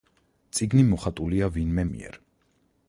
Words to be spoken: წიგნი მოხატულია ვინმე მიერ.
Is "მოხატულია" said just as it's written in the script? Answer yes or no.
yes